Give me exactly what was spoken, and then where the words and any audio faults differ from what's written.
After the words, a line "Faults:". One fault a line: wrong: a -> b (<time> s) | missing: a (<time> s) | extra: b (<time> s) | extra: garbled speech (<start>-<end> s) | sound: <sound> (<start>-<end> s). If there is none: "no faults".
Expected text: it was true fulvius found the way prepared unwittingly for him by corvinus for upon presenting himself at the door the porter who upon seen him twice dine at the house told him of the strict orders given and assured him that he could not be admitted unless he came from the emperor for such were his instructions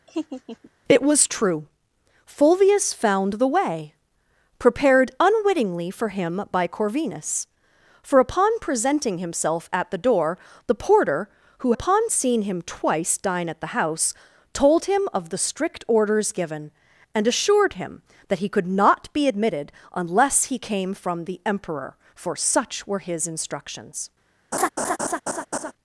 it was true fulvius found the way prepared unwittingly for him by corvinus for upon presenting himself at the door the porter who upon seen him twice dine at the house told him of the strict orders given and assured him that he could not be admitted unless he came from the emperor for such were his instructions
Faults:
sound: laugh (0.1-0.7 s)
sound: laugh (24.5-25.7 s)